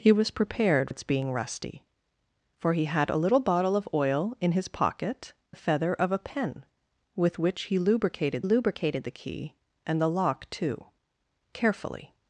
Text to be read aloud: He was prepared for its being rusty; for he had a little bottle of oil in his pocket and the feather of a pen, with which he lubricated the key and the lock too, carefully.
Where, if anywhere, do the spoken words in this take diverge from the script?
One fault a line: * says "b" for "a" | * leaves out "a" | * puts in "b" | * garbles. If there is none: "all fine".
* leaves out "for"
* leaves out "and"
* puts in "lubricated"